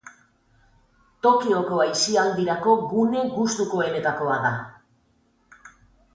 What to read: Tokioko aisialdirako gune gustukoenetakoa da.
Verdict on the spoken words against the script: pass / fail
pass